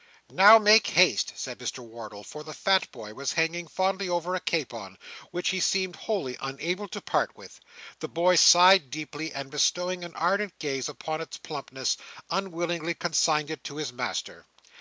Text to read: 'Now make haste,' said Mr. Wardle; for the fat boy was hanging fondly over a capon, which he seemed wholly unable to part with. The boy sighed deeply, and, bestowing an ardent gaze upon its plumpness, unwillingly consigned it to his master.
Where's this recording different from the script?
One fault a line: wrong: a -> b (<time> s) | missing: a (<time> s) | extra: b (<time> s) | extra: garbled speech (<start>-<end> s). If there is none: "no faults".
no faults